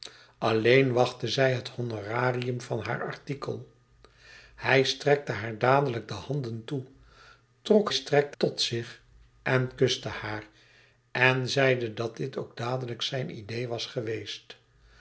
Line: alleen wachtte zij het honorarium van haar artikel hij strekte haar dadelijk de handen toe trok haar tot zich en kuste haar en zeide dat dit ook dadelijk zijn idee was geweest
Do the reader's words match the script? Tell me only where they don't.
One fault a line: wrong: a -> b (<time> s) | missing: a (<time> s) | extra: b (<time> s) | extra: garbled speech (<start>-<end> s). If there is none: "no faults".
wrong: haar -> strekte (7.9 s)